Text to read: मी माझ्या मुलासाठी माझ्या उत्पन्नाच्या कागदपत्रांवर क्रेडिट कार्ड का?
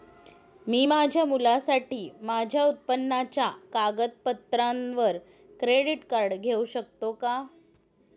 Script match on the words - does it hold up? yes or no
no